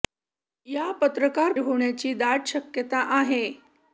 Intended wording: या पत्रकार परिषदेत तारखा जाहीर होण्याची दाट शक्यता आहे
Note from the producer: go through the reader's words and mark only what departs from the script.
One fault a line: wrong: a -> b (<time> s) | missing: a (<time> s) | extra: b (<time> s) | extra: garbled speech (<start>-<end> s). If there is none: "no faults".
missing: परिषदेत तारखा जाहीर (1.5 s)